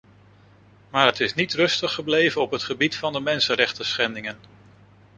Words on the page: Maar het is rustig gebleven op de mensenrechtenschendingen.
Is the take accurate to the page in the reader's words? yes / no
no